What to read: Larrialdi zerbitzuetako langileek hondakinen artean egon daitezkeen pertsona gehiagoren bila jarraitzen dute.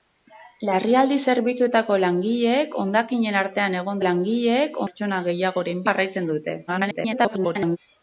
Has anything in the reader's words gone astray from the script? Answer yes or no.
yes